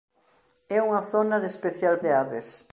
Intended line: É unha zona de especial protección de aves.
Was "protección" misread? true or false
true